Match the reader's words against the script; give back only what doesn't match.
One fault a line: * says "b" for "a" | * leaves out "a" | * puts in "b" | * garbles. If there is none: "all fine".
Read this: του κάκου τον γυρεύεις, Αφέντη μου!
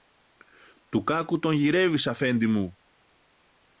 all fine